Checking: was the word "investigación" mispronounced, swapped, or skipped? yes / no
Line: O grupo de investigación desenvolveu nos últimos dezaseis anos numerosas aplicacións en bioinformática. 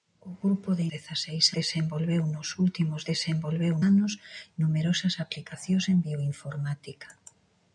yes